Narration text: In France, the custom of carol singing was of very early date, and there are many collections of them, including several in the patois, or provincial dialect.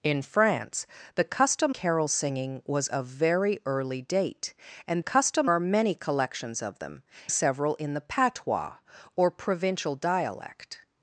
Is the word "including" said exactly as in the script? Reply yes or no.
no